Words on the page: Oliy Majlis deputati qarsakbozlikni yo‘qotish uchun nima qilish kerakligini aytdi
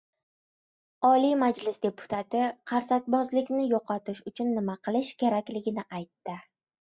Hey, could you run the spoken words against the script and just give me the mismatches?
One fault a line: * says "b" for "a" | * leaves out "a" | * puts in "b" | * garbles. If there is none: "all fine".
all fine